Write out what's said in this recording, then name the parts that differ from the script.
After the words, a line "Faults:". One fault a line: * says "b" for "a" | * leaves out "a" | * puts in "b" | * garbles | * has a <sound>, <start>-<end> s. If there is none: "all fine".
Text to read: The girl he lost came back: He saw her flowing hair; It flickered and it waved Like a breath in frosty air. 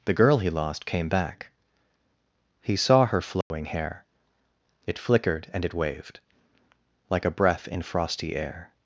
The girl he lost came back: He saw her flowing hair; It flickered and it waved Like a breath in frosty air.
Faults:
* has a dropout, 3.4-3.5 s